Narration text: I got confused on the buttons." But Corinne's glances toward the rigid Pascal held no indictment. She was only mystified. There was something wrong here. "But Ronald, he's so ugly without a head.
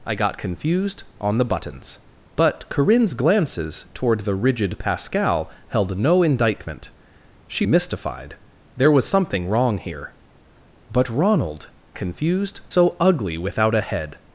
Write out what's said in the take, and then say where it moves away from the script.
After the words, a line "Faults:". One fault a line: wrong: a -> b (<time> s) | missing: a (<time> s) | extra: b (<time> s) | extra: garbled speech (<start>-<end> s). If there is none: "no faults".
I got confused on the buttons." But Corinne's glances toward the rigid Pascal held no indictment. She mystified. There was something wrong here. "But Ronald, confused so ugly without a head.
Faults:
missing: was only (7.7 s)
wrong: he's -> confused (11.9 s)